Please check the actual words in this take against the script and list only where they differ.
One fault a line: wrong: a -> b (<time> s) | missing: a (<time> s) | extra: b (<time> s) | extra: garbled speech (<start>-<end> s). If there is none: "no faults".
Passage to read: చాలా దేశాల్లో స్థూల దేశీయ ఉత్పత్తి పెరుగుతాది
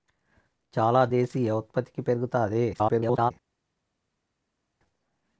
missing: దేశాల్లో స్థూల (1.1 s)
extra: garbled speech (2.7-3.3 s)